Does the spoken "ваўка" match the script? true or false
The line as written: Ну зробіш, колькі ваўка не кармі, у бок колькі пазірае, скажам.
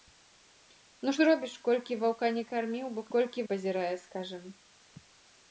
true